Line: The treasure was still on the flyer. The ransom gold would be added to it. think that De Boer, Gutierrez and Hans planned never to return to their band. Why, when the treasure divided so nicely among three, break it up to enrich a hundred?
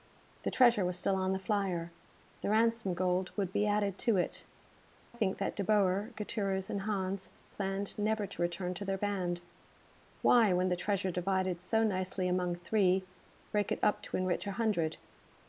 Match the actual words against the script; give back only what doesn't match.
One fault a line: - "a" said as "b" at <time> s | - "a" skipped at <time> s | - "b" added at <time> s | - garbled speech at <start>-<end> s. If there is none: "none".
none